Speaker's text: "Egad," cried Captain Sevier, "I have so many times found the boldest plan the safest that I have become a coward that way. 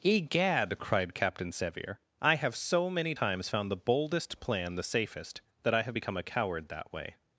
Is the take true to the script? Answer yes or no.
yes